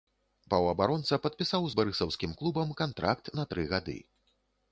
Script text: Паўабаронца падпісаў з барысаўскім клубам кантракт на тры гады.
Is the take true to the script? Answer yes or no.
yes